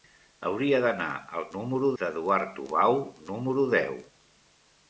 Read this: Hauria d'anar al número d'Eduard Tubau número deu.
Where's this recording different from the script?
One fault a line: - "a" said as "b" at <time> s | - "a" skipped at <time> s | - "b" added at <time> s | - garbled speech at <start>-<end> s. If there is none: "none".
none